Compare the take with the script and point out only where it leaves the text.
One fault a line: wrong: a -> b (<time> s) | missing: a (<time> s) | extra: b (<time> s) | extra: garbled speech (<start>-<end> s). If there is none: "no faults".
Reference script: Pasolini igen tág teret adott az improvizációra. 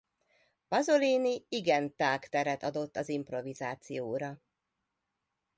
no faults